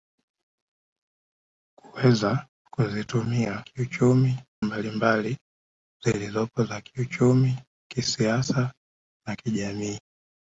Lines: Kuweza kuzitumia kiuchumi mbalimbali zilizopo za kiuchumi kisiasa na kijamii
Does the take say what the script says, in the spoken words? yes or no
yes